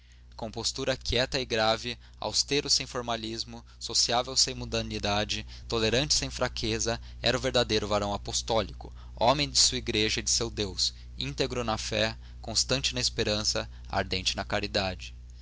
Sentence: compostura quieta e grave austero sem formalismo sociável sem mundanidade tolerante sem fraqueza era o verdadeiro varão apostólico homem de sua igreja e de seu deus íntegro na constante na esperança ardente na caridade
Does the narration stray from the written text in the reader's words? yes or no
yes